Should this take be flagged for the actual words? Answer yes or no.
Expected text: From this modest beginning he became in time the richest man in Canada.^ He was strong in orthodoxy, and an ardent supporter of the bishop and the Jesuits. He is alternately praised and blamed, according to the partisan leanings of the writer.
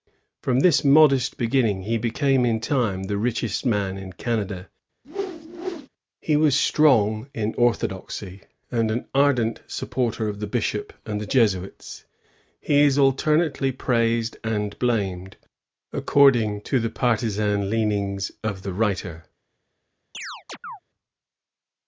no